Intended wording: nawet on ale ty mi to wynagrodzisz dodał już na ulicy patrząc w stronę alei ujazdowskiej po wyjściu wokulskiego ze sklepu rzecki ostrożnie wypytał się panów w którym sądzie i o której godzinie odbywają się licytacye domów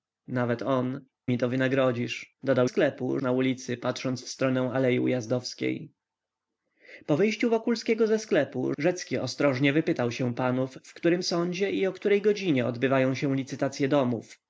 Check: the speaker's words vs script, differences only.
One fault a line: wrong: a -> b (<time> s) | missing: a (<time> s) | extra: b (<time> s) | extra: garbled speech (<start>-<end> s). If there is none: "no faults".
missing: ale ty (1.1 s)
wrong: już -> sklepu (2.6 s)